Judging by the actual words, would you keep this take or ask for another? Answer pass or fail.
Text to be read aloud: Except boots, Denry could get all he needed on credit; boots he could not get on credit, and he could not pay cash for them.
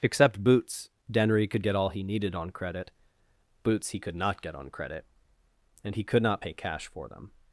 pass